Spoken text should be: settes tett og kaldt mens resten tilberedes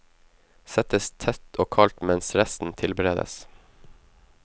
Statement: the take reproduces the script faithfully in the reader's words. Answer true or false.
true